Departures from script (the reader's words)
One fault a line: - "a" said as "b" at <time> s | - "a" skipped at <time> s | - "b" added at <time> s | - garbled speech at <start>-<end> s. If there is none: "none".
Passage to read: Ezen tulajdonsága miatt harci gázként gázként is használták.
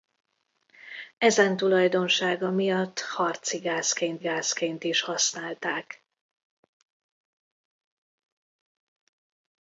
none